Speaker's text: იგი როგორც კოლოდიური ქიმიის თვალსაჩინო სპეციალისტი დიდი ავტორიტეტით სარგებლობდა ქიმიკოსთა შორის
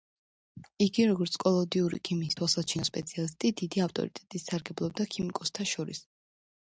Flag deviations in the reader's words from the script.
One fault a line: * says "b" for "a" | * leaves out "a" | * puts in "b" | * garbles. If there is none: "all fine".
all fine